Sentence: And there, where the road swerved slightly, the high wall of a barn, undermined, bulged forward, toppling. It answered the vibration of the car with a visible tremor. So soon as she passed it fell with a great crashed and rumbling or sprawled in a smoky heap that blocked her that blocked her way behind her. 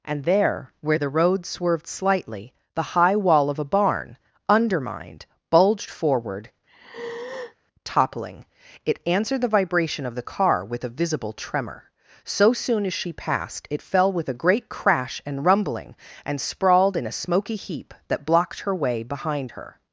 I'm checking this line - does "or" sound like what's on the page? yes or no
no